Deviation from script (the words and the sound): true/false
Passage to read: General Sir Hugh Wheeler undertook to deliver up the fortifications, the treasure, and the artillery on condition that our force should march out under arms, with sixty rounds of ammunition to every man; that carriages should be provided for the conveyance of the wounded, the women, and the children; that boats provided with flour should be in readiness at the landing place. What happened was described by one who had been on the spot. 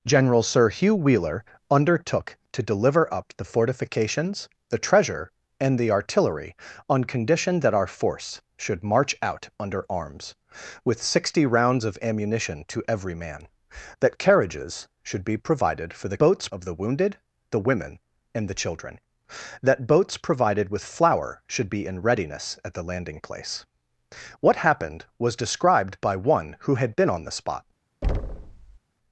true